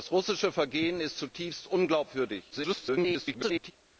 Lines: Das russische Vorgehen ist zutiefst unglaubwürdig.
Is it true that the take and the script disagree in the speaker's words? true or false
true